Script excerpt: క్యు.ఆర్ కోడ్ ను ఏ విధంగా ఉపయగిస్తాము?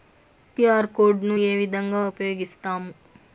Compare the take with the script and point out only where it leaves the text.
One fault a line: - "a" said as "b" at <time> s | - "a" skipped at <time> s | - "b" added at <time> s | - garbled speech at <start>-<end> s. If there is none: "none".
none